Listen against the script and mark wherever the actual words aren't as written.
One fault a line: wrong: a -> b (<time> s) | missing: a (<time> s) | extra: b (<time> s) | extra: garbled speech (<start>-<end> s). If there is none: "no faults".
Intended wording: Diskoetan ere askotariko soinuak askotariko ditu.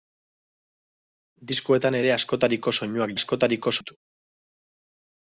no faults